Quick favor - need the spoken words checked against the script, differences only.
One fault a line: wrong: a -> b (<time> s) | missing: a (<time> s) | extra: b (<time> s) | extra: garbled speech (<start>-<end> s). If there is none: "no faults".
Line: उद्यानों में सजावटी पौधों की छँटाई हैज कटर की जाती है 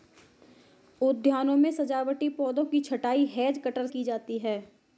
no faults